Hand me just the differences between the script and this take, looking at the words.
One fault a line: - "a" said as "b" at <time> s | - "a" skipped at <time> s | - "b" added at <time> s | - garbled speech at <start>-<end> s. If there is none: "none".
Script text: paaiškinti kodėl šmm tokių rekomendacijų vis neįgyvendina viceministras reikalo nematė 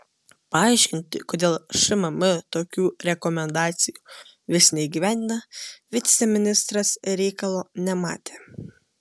none